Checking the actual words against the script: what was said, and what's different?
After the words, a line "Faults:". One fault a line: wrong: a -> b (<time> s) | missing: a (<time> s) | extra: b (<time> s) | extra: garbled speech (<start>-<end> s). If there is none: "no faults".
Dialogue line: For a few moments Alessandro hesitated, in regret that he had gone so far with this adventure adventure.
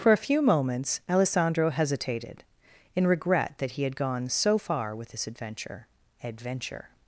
For a few moments Alessandro hesitated, in regret that he had gone so far with this adventure adventure.
Faults:
no faults